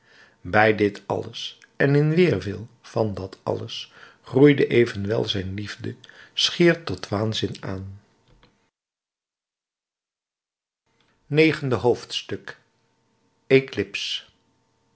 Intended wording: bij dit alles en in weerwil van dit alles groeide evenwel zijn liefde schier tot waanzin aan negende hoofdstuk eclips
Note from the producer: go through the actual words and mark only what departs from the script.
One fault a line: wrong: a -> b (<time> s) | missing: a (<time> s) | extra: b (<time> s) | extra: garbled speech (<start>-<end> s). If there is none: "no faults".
wrong: dit -> dat (3.1 s)